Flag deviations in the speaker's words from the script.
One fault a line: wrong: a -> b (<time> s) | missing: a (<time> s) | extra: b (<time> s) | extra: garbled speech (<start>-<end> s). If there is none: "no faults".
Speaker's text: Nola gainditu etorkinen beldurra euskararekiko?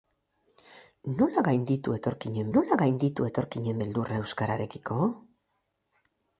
extra: nola gainditu etorkinen (2.5 s)